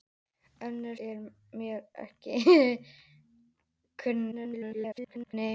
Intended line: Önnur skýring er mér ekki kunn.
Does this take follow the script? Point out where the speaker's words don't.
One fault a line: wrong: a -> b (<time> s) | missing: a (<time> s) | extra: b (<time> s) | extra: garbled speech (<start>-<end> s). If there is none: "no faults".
missing: skýring (1.0 s)
extra: garbled speech (4.3-5.3 s)